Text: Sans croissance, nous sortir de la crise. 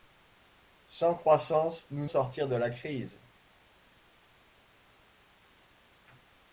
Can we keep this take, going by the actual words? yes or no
yes